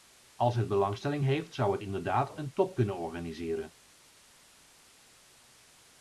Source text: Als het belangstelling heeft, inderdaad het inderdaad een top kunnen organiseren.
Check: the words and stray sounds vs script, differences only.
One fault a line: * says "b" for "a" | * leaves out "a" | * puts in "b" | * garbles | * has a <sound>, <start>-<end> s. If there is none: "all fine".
* says "zou" for "inderdaad"